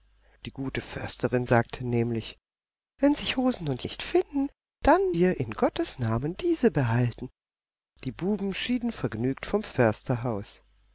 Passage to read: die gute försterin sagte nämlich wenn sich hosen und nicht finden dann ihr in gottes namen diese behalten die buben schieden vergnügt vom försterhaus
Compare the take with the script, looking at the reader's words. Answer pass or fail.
pass